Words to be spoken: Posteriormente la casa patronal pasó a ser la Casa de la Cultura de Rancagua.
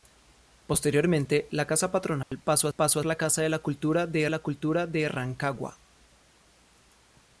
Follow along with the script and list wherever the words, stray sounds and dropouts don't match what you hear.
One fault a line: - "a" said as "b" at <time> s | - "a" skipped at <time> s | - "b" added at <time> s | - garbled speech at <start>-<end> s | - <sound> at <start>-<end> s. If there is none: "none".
- dropout at 2.2-2.3 s
- "ser" said as "pasó" at 2.7 s
- "la Cultura de" added at 4.3 s